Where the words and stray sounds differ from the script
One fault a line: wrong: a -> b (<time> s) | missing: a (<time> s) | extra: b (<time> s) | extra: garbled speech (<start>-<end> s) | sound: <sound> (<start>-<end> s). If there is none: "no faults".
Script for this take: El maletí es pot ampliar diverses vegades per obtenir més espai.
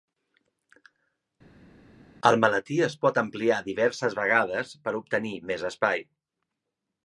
no faults